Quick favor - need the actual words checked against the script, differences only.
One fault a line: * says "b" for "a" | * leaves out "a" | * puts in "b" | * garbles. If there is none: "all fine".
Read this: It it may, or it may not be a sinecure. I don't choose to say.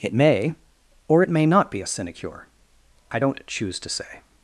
* leaves out "it"